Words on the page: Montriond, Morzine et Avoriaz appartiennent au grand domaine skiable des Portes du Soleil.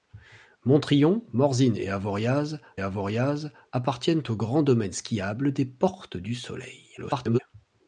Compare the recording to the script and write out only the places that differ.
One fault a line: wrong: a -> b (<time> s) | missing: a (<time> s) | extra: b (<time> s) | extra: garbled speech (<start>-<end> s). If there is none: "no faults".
extra: Avoriaz (2.8 s)
extra: garbled speech (7.0-7.4 s)